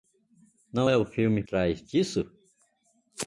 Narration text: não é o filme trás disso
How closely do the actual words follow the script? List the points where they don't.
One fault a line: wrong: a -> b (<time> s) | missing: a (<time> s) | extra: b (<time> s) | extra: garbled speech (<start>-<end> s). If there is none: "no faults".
no faults